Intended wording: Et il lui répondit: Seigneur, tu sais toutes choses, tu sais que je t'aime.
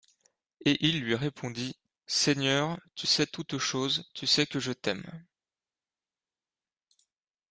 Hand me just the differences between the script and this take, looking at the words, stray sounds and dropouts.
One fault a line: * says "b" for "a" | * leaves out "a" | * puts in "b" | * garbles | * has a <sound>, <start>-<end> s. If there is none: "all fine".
all fine